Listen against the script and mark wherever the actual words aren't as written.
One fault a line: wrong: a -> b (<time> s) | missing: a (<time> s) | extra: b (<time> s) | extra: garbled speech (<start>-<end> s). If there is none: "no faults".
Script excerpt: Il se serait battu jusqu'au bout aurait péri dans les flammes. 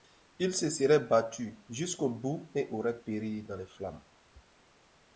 extra: et (2.5 s)